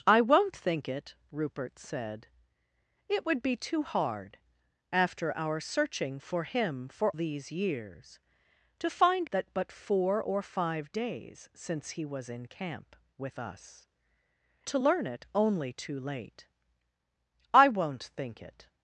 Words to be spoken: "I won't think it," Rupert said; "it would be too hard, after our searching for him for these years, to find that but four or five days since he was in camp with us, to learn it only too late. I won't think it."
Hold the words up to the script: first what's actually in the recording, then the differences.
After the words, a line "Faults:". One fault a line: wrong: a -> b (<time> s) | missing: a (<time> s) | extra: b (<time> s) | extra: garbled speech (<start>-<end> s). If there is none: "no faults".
"I won't think it," Rupert said; "it would be too hard, after our searching for him for these years, to find that but four or five days since he was in camp with us, to learn it only too late. I won't think it."
Faults:
no faults